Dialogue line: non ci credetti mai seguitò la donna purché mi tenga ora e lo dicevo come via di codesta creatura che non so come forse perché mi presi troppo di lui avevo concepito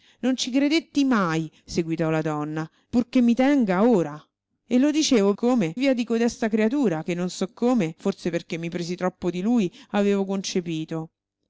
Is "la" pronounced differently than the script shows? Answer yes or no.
no